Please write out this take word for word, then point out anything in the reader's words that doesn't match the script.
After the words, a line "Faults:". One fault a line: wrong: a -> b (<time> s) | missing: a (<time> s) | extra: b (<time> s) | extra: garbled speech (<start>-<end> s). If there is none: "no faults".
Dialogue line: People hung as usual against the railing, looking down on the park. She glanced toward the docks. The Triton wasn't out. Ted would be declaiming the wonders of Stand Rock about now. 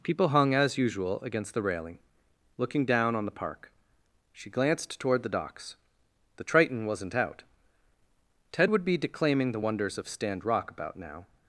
People hung as usual against the railing, looking down on the park. She glanced toward the docks. The Triton wasn't out. Ted would be declaiming the wonders of Stand Rock about now.
Faults:
no faults